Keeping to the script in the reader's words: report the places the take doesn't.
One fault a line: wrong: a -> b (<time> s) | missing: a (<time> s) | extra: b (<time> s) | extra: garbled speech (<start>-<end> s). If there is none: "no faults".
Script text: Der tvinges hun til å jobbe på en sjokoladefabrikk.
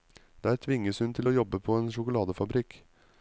no faults